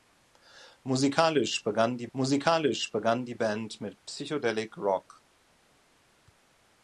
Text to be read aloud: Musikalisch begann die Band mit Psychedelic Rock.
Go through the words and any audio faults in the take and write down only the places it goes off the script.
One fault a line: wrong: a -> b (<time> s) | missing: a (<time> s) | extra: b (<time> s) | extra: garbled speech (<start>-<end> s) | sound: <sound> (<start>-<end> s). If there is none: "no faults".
extra: musikalisch begann die (2.1 s)